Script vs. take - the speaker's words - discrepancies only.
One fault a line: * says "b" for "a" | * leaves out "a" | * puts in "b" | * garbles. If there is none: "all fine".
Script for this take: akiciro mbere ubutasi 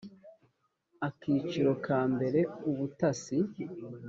* puts in "ka"